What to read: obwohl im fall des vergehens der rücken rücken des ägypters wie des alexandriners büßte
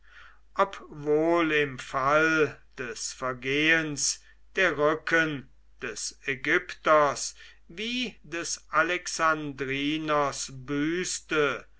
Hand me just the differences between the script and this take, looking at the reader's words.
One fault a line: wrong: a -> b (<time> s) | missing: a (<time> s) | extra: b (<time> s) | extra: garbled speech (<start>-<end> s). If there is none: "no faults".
missing: rücken (5.5 s)